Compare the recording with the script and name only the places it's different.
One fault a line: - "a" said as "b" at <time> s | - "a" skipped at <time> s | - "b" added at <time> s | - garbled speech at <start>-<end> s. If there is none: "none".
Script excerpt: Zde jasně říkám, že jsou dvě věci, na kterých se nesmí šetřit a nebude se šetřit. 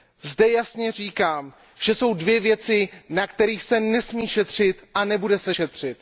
none